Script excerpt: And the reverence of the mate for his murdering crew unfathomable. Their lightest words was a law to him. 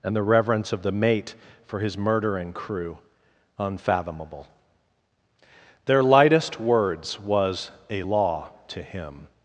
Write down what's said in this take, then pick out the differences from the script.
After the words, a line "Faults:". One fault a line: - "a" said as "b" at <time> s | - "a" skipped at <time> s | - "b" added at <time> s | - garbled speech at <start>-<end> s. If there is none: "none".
And the reverence of the mate for his murdering crew unfathomable. Their lightest words was a law to him.
Faults:
none